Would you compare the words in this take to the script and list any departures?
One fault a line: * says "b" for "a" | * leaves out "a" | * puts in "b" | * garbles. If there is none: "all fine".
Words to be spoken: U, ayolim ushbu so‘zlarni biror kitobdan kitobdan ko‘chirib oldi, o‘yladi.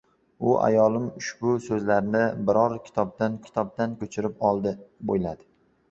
all fine